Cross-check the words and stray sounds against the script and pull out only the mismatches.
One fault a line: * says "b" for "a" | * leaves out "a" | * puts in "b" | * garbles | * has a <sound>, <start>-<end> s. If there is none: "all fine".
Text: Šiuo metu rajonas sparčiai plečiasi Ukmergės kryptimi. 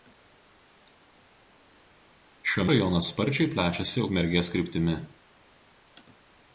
* leaves out "metu"